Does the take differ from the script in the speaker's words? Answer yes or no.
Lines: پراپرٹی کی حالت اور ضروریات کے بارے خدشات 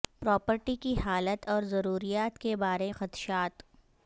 no